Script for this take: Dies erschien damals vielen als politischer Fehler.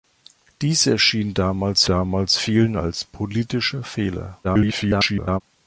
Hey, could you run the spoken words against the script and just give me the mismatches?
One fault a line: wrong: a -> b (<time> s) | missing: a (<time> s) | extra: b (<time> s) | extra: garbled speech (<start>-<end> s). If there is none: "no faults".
extra: damals (1.9 s)
extra: garbled speech (4.4-5.4 s)